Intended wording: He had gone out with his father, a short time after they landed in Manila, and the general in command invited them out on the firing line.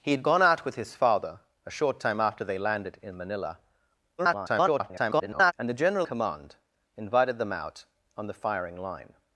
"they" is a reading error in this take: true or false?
false